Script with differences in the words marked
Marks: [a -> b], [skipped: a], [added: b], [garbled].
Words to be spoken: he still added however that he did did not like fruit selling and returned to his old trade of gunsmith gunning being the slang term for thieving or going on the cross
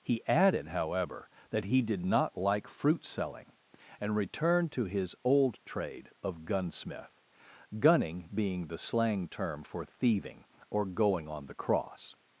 he [skipped: still] added however that he did [skipped: did] not like fruit selling and returned to his old trade of gunsmith gunning being the slang term for thieving or going on the cross